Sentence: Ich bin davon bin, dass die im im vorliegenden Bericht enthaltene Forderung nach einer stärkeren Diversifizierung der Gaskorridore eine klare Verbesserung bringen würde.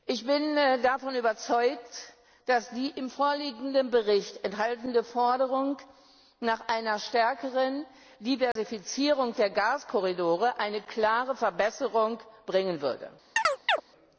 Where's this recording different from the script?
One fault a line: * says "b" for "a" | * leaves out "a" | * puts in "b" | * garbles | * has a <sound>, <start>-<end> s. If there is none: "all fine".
* says "überzeugt" for "bin"
* leaves out "im"
* has a dropout, 8.5-8.6 s
* has a chirp, 13.4-13.8 s